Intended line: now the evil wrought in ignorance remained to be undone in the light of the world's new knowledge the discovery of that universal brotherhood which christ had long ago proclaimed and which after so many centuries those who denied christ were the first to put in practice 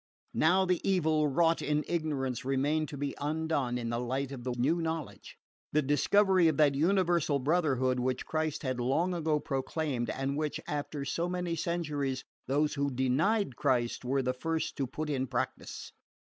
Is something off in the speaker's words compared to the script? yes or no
yes